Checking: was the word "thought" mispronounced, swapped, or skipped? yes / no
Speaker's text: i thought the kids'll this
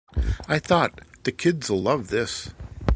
no